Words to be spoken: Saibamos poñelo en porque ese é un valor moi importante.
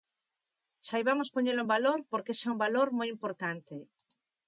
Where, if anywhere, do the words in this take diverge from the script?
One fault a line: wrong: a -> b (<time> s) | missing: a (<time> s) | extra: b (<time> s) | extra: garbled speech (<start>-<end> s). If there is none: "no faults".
extra: valor (1.7 s)